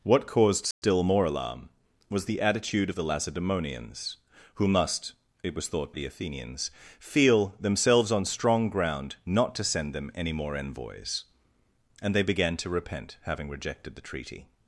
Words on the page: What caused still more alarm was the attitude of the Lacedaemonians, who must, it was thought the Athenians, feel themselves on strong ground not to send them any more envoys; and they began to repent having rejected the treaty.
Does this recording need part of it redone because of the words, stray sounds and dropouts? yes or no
yes